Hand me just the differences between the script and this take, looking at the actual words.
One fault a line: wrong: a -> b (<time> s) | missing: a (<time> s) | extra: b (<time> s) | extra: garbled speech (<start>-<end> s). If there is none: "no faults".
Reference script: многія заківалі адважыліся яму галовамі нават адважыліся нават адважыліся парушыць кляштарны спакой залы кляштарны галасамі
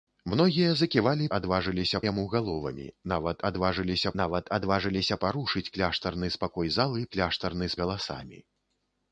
no faults